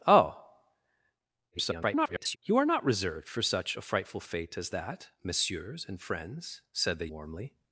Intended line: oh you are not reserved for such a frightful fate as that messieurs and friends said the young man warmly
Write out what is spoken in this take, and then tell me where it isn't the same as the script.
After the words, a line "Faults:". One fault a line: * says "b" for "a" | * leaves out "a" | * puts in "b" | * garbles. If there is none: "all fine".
oh [garbled] you are not reserved for such a frightful fate as that messieurs and friends said the warmly
Faults:
* garbles
* leaves out "young man"